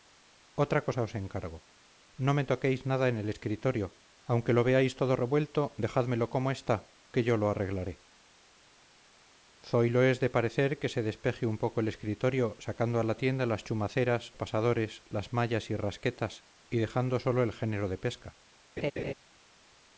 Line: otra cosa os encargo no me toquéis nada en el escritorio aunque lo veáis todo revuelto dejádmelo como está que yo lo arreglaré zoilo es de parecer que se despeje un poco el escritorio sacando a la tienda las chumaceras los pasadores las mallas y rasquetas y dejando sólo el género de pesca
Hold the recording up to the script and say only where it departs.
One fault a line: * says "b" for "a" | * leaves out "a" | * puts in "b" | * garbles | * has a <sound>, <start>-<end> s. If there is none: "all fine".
* leaves out "los"
* has a laugh, 18.8-19.1 s